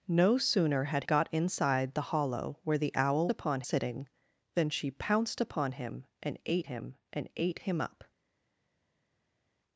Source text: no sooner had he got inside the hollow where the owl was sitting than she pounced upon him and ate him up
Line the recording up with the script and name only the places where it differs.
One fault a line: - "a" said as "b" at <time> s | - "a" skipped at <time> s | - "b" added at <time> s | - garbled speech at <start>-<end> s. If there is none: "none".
- "he" skipped at 1.1 s
- "was" said as "upon" at 3.3 s
- "and ate him" added at 7.1 s